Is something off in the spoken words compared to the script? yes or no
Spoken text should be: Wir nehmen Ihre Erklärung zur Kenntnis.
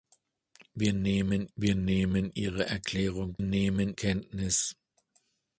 yes